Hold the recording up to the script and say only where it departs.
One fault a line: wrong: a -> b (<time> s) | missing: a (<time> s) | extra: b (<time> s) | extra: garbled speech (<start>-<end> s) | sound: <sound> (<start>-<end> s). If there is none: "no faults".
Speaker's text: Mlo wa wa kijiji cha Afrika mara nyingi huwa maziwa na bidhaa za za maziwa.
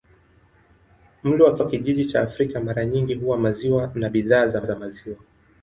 no faults